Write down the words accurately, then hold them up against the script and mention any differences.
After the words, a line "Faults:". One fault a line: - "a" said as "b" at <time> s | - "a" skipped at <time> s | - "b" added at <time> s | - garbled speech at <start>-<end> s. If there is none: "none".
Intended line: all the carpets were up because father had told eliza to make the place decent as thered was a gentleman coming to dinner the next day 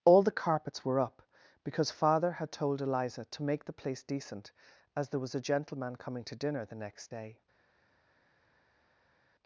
all the carpets were up because father had told eliza to make the place decent as there was a gentleman coming to dinner the next day
Faults:
- "thered" said as "there" at 5.1 s